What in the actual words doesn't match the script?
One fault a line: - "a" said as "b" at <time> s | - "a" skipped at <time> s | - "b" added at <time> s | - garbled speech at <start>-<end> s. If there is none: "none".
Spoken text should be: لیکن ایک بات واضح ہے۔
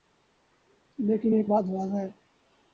none